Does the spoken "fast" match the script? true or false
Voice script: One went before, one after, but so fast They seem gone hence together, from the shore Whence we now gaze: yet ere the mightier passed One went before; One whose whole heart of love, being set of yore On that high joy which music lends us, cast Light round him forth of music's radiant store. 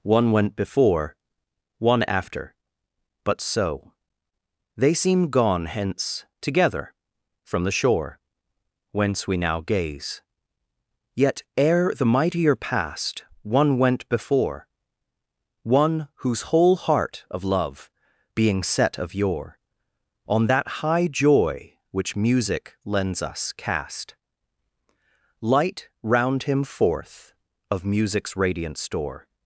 false